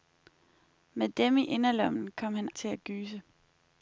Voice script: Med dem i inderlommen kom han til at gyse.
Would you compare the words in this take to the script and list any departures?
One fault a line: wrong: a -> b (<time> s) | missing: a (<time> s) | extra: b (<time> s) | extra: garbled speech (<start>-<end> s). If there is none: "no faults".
no faults